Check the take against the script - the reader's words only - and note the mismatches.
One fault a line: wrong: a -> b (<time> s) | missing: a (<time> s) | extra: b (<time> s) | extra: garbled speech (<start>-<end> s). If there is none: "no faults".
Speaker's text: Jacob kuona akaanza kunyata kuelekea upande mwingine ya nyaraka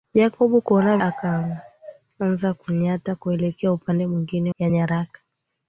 no faults